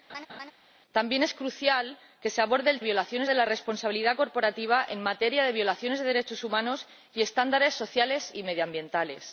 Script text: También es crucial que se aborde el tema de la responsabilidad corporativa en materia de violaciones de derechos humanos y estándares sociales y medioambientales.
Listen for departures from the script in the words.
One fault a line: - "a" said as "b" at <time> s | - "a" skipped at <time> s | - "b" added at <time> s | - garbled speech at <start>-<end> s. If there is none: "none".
- "tema" said as "violaciones" at 2.8 s